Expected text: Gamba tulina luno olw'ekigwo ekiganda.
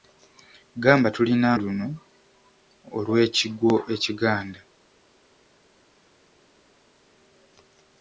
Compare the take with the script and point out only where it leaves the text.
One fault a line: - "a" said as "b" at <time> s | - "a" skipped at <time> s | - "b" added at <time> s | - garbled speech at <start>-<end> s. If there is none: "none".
none